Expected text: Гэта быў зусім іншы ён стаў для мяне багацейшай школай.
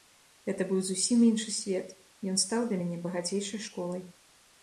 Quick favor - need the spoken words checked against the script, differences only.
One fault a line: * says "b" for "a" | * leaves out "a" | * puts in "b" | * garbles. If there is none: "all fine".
* puts in "свет"